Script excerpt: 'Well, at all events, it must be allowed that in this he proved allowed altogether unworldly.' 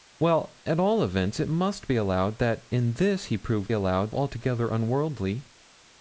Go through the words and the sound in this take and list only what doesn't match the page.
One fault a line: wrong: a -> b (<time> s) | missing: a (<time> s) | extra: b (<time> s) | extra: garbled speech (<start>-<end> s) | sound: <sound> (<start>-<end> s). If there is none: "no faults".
no faults